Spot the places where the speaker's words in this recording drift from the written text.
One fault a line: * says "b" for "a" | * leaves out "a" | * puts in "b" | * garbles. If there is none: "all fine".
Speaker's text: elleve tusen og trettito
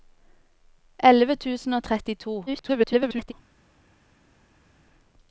* garbles